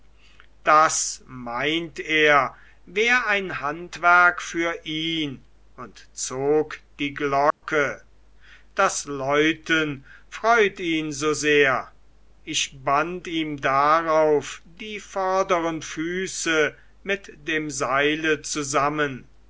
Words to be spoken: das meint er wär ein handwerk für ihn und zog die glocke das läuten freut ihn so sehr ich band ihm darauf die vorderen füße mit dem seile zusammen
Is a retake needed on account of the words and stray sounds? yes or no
yes